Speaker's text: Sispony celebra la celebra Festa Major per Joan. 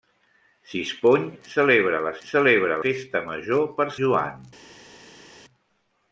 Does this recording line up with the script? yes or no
yes